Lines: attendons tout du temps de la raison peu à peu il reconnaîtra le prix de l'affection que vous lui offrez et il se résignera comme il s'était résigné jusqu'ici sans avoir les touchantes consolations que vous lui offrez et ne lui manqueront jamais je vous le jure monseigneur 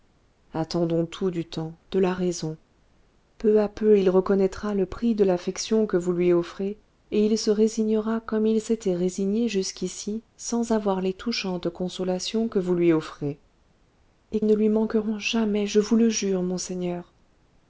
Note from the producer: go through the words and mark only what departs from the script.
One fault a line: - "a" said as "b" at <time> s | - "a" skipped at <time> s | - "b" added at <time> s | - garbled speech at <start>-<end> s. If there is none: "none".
none